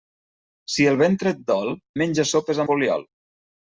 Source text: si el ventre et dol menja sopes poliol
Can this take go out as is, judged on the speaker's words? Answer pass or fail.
pass